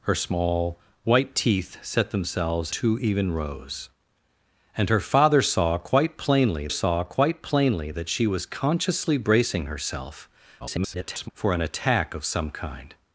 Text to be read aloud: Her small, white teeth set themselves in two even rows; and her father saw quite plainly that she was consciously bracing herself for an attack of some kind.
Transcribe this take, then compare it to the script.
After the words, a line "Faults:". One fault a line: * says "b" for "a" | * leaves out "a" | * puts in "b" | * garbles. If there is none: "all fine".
Her small, white teeth set themselves two even rows; and her father saw quite plainly saw quite plainly that she was consciously bracing herself [garbled] for an attack of some kind.
Faults:
* leaves out "in"
* puts in "saw quite plainly"
* garbles